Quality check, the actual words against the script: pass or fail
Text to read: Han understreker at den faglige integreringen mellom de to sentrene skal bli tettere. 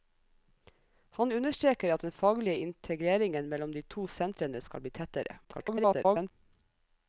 fail